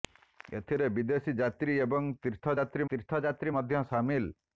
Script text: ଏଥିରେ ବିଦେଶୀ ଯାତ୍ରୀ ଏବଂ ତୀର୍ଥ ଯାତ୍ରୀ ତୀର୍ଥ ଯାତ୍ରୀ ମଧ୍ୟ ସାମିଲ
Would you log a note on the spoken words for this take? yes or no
no